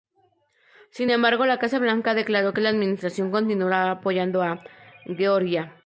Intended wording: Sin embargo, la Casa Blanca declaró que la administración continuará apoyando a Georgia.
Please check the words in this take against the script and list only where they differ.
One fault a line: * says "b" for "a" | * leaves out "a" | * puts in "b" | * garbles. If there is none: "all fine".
all fine